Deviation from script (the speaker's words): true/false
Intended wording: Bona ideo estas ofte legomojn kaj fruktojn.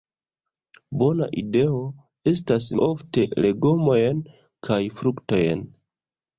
false